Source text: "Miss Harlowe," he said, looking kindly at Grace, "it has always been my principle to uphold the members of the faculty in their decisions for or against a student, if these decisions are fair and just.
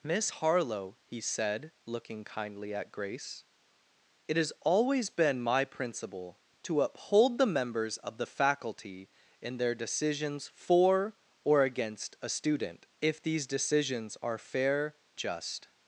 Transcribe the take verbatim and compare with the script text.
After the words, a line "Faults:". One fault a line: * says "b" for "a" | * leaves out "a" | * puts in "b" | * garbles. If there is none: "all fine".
"Miss Harlowe," he said, looking kindly at Grace, "it has always been my principle to uphold the members of the faculty in their decisions for or against a student, if these decisions are fair just.
Faults:
* leaves out "and"